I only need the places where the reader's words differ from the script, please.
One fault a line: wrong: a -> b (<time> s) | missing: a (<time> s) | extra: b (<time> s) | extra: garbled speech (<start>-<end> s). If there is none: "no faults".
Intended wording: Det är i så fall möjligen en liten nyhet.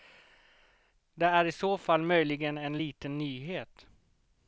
no faults